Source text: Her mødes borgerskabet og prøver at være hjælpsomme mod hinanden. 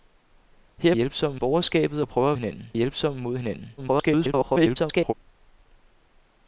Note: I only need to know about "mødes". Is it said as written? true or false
false